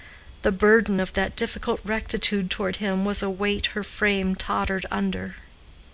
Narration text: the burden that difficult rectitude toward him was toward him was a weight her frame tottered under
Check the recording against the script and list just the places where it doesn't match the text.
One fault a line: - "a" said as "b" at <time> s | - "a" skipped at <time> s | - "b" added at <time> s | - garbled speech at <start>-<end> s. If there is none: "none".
- "of" added at 1.0 s
- "toward him was" skipped at 3.2 s